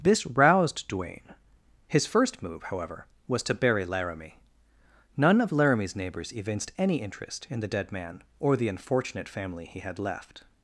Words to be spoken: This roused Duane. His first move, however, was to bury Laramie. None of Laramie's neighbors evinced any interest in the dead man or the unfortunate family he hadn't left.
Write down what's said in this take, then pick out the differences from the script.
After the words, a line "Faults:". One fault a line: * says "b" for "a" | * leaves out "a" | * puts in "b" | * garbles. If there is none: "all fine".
This roused Duane. His first move, however, was to bury Laramie. None of Laramie's neighbors evinced any interest in the dead man or the unfortunate family he had left.
Faults:
* says "had" for "hadn't"